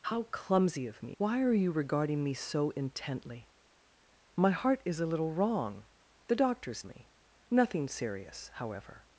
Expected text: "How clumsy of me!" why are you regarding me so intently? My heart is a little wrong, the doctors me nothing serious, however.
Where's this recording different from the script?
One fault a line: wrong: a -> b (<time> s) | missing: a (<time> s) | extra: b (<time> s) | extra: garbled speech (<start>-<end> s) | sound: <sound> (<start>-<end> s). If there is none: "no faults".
no faults